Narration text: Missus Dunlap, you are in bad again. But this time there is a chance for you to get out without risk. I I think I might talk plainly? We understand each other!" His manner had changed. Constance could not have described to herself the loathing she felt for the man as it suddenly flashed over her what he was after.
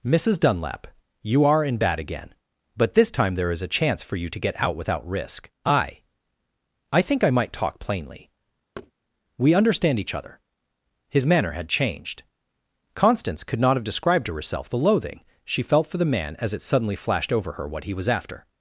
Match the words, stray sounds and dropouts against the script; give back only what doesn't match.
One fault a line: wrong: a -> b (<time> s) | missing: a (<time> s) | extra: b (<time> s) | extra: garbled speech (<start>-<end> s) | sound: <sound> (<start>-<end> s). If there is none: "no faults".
sound: thud (8.8-8.9 s)